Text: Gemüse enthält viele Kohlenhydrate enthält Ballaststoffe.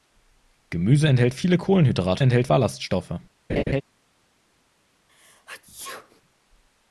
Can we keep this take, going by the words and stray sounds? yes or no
no